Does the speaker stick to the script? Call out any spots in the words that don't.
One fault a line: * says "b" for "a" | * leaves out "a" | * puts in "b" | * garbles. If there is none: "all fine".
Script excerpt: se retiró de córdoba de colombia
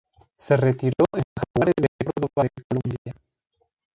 * puts in "en jaguares"